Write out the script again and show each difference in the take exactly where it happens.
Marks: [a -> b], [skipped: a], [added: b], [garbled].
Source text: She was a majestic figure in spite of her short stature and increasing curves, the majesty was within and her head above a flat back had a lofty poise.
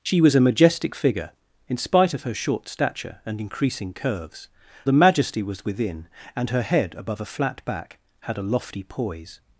She was a majestic figure in spite of her short stature and increasing curves, the majesty was within and her head above a flat back had a lofty poise.